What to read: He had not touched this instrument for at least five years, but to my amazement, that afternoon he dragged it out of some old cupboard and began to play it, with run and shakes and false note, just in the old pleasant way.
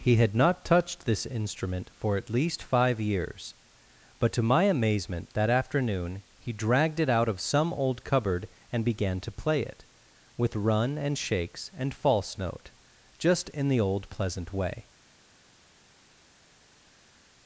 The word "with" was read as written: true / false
true